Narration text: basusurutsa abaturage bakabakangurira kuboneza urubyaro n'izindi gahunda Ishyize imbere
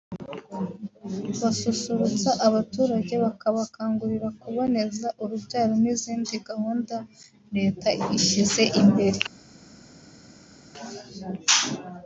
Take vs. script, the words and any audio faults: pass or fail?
fail